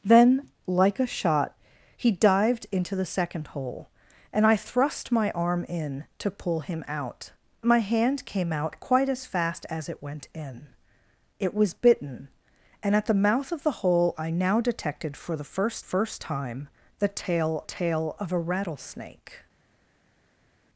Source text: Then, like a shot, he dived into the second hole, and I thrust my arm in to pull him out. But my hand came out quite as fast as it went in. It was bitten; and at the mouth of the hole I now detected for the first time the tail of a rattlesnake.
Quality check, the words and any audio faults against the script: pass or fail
fail